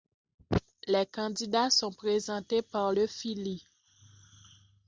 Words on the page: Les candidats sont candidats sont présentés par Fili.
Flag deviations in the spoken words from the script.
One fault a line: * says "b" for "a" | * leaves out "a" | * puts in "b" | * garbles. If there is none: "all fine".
* leaves out "candidats sont"
* puts in "le"